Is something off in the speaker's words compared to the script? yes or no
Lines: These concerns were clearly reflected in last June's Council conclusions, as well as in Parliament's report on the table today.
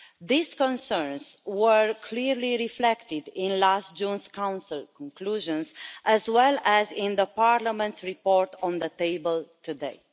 no